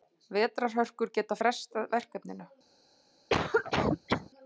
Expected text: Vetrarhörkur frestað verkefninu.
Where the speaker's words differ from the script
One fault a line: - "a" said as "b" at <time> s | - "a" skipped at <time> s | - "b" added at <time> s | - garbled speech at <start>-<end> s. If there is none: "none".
- "gætu" added at 1.2 s